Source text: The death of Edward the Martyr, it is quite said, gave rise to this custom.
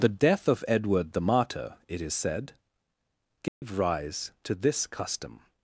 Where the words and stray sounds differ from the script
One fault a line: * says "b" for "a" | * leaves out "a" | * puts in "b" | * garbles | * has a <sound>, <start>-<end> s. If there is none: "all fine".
* leaves out "quite"
* has a dropout, 3.5-3.6 s